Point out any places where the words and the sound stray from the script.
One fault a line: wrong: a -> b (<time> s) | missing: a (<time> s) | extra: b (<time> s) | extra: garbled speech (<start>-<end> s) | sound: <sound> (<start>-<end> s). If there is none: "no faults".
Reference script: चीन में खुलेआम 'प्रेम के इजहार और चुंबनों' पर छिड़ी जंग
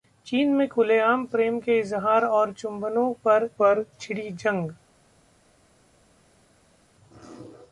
extra: पर (3.6 s)